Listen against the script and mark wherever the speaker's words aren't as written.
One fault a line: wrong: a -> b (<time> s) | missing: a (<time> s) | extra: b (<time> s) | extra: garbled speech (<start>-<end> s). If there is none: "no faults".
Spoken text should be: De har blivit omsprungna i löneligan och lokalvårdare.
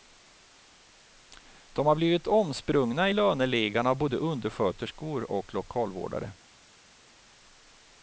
extra: av både undersköterskor (3.9 s)